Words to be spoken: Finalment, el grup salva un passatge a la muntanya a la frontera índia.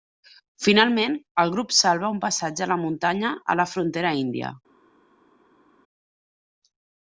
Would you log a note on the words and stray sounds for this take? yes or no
no